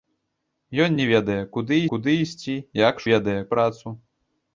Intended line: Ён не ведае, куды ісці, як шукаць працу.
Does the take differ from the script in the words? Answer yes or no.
yes